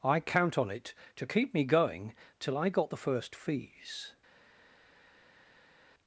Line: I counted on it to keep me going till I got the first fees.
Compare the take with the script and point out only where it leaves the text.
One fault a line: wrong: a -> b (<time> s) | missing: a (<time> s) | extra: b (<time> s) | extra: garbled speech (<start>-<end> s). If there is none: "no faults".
wrong: counted -> count (0.2 s)